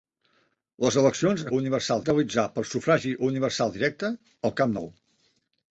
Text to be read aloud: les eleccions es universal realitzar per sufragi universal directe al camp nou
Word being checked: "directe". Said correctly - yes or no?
yes